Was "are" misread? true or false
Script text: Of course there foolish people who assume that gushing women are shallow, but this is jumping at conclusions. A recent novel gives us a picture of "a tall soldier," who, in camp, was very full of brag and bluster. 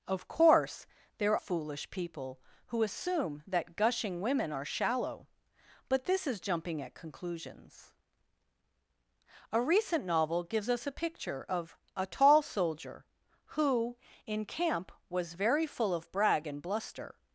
false